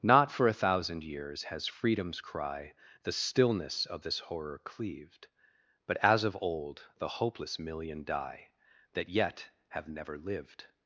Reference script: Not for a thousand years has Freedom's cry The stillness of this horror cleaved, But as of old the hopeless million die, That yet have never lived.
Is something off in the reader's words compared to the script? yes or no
no